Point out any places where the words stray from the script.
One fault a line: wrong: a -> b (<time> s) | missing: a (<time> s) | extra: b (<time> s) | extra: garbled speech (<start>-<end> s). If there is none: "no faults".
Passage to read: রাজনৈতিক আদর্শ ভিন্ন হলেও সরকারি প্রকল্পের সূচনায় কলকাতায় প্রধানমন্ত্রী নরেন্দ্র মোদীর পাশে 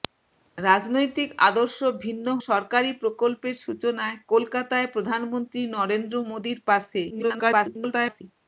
missing: হলেও (2.3 s)
extra: garbled speech (7.1-8.2 s)